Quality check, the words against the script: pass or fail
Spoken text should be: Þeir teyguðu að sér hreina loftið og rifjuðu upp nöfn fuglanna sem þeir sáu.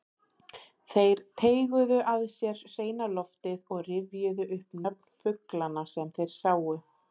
pass